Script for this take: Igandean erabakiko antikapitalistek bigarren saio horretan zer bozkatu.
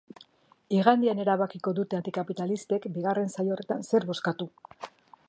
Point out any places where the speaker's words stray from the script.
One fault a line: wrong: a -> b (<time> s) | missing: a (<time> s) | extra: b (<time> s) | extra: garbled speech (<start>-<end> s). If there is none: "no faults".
extra: dute (1.8 s)